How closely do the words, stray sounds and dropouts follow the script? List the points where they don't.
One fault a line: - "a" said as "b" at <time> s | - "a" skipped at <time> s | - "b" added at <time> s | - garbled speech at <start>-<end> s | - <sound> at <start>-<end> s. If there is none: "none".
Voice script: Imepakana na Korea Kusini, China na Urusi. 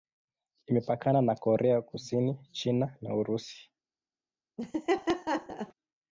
- laugh at 4.6-5.7 s